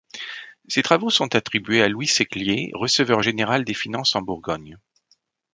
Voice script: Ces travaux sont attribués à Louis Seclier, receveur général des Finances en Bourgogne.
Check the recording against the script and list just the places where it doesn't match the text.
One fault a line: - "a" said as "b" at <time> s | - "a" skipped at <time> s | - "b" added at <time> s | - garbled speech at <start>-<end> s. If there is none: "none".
none